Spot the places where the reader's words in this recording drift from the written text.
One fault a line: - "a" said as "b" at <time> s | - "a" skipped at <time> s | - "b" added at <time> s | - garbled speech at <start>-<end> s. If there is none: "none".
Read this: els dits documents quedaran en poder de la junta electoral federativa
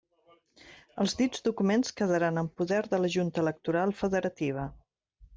none